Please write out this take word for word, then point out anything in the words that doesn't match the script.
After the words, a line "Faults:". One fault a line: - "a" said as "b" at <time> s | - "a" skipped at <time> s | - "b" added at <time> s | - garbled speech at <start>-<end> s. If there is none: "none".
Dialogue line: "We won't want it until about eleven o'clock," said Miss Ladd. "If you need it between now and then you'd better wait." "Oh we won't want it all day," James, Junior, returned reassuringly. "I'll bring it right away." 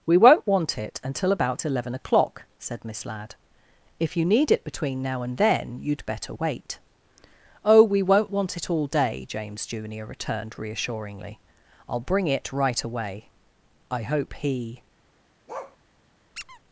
"We won't want it until about eleven o'clock," said Miss Ladd. "If you need it between now and then you'd better wait." "Oh we won't want it all day," James, Junior, returned reassuringly. "I'll bring it right away." "I hope he
Faults:
- "I hope he" added at 13.9 s